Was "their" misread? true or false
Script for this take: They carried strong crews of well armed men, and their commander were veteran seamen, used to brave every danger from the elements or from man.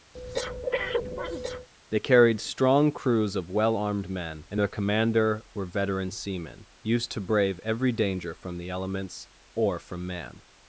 false